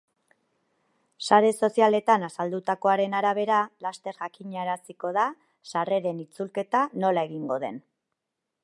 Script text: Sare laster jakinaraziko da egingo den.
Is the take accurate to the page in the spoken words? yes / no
no